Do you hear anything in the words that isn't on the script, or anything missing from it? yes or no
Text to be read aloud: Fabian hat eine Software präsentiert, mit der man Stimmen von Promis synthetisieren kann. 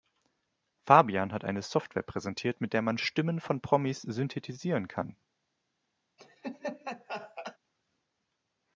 no